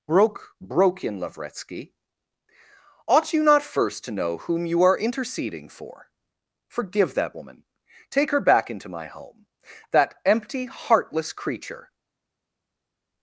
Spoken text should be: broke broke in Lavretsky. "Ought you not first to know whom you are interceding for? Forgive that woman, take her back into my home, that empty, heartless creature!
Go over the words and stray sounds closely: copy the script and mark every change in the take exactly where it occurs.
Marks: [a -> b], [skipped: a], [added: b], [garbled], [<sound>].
broke broke in Lavretsky. "Ought you not first to know whom you are interceding for? Forgive that woman, take her back into my home, that empty, heartless creature!